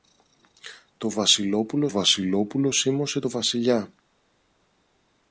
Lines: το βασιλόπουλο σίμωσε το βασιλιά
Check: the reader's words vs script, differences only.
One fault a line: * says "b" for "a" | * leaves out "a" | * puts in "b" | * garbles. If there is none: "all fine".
* puts in "βασιλόπουλο"